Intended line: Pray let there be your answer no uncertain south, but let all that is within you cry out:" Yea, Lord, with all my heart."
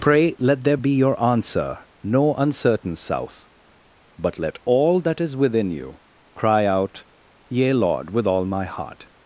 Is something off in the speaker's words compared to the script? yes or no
no